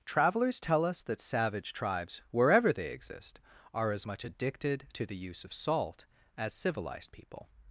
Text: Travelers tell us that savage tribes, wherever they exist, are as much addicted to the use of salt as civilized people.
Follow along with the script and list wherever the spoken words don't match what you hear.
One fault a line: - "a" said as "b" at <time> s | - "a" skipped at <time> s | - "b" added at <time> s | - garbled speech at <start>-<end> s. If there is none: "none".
none